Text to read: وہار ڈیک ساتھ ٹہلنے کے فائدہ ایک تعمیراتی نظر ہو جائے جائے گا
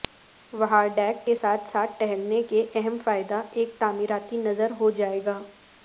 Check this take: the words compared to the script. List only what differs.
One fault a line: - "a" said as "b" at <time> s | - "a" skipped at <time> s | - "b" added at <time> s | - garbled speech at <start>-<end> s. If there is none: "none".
- "کے" added at 1.2 s
- "ساتھ" added at 1.7 s
- "اہم" added at 2.7 s
- "جائے" skipped at 5.2 s